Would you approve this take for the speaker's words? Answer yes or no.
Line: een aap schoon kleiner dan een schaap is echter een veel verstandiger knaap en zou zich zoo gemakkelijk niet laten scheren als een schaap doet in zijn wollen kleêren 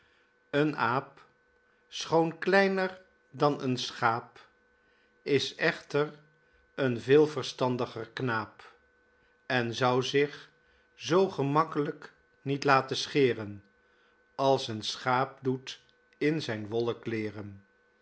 yes